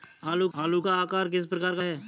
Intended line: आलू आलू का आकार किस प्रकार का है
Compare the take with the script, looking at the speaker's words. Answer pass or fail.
pass